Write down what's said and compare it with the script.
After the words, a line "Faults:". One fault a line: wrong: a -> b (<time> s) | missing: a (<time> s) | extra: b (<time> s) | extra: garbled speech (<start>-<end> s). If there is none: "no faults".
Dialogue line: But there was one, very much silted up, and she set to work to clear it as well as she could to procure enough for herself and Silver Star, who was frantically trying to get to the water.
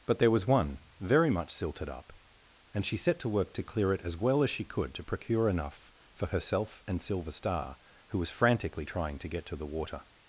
But there was one, very much silted up, and she set to work to clear it as well as she could to procure enough for herself and Silver Star, who was frantically trying to get to the water.
Faults:
no faults